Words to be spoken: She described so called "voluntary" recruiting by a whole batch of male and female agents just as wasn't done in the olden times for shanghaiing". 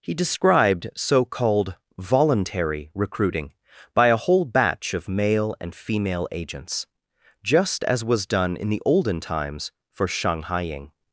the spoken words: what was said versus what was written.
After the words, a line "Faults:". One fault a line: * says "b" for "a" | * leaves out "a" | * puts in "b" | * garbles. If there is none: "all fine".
He described so called "voluntary" recruiting by a whole batch of male and female agents just as was done in the olden times for shanghaiing".
Faults:
* says "He" for "She"
* says "was" for "wasn't"